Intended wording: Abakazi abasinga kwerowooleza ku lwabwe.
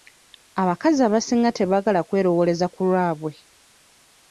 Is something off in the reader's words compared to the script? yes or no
yes